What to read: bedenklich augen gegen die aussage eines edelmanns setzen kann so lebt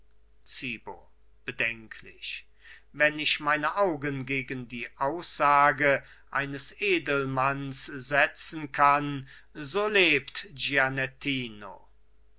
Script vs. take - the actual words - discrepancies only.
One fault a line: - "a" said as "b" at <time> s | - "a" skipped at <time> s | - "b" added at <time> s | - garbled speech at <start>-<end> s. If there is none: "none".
- "wenn ich meine" added at 2.9 s